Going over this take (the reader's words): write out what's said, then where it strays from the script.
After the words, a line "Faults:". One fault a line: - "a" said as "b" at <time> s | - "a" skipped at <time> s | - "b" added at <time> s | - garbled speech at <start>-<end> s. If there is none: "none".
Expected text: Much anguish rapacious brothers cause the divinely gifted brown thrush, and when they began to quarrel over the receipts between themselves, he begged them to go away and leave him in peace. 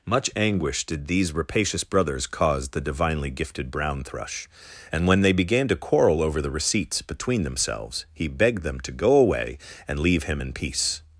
Much anguish did these rapacious brothers cause the divinely gifted brown thrush, and when they began to quarrel over the receipts between themselves, he begged them to go away and leave him in peace.
Faults:
- "did these" added at 0.8 s